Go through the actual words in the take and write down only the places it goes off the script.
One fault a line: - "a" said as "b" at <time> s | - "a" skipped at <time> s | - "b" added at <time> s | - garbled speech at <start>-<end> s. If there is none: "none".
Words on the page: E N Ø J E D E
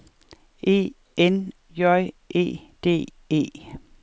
- "Ø" skipped at 1.5 s